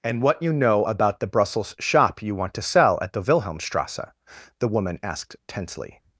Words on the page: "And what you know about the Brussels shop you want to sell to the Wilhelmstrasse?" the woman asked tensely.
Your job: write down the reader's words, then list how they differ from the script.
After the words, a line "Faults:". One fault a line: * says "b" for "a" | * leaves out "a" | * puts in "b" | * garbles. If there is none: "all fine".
"And what you know about the Brussels shop you want to sell at the Wilhelmstrasse?" the woman asked tensely.
Faults:
* says "at" for "to"